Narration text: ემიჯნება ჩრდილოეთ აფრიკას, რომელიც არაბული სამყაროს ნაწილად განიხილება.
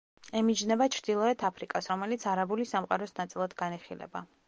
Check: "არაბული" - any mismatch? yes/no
no